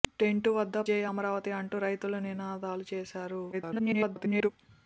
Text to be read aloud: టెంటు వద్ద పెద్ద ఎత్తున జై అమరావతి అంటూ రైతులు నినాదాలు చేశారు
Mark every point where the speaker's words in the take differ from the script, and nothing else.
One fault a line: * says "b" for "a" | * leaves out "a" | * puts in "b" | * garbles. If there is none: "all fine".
* leaves out "పెద్ద ఎత్తున"
* garbles